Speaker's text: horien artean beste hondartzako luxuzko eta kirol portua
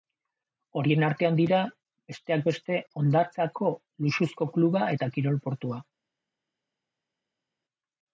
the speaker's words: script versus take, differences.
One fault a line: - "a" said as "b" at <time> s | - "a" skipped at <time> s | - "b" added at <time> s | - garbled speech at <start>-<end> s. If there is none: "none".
- "dira besteak" added at 1.4 s
- "kluba" added at 4.6 s